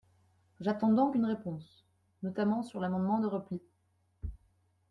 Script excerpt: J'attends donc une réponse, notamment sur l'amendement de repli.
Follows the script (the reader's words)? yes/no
yes